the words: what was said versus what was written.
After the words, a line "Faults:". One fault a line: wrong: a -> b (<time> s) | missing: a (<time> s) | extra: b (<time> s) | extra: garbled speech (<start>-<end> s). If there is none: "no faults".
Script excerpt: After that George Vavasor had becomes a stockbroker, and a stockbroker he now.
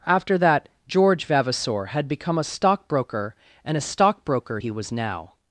After that George Vavasor had become a stockbroker, and a stockbroker he was now.
Faults:
wrong: becomes -> become (2.1 s)
extra: was (4.7 s)